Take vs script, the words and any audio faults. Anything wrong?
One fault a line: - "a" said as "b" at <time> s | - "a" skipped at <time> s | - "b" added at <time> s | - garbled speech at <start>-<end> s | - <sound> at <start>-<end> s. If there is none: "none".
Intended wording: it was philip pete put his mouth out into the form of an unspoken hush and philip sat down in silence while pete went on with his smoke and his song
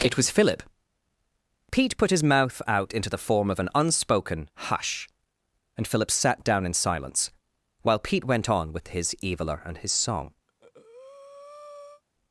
- "smoke" said as "eviler" at 9.2 s
- breath at 10.5-12.0 s